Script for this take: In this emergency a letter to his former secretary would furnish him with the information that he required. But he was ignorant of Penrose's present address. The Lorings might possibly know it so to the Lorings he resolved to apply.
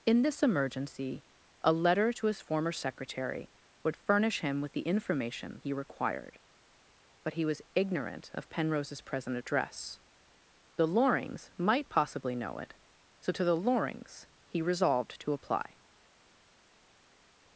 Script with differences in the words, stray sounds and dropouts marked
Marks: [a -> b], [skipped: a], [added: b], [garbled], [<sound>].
In this emergency a letter to his former secretary would furnish him with the information [skipped: that] he required. But he was ignorant of Penrose's present address. The Lorings might possibly know it so to the Lorings he resolved to apply.